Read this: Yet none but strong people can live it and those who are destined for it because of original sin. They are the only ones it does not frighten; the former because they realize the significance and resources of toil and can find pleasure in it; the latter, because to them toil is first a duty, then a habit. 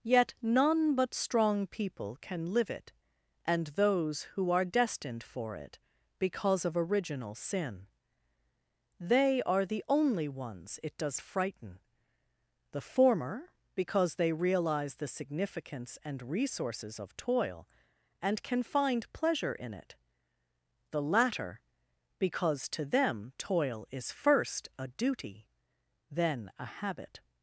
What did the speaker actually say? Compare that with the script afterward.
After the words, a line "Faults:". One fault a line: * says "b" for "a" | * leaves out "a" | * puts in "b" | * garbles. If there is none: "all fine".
Yet none but strong people can live it and those who are destined for it because of original sin. They are the only ones it does frighten; the former because they realize the significance and resources of toil and can find pleasure in it; the latter, because to them toil is first a duty, then a habit.
Faults:
* leaves out "not"